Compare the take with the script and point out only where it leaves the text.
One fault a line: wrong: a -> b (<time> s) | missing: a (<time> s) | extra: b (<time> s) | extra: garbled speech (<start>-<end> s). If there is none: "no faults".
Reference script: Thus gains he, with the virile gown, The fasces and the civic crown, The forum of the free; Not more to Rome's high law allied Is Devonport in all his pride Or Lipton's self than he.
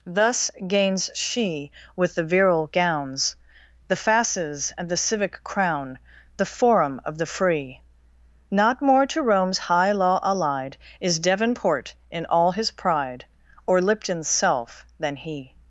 wrong: he -> she (1.1 s)
wrong: gown -> gowns (2.7 s)